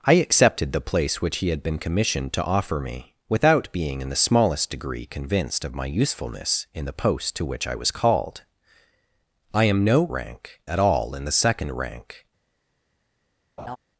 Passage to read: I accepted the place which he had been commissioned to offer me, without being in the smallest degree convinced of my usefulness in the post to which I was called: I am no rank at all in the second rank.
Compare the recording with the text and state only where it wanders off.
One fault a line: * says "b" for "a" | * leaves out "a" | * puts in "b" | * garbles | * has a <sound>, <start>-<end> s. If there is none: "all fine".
* has a laugh, 13.6-13.8 s